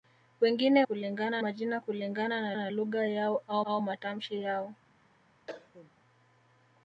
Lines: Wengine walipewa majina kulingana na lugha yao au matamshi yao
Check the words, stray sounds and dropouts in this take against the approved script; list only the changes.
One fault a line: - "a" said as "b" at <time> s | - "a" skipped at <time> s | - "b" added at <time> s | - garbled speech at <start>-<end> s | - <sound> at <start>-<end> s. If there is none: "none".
- "walipewa" said as "kulingana" at 0.8 s
- "na" added at 2.5 s
- "au" added at 3.6 s
- cough at 5.5-5.9 s